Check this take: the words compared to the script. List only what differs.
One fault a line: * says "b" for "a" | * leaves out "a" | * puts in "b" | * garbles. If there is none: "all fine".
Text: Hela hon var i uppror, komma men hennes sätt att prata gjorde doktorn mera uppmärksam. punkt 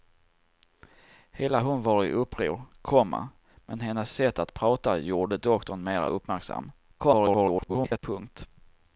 * garbles